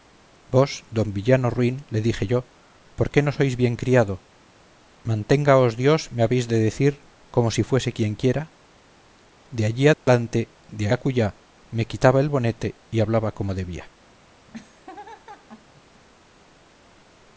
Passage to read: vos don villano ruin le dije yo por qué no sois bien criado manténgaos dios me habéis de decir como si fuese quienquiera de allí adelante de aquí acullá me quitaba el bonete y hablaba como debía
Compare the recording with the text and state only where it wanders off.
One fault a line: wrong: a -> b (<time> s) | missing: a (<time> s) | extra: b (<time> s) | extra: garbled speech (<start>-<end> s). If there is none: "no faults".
missing: aquí (10.8 s)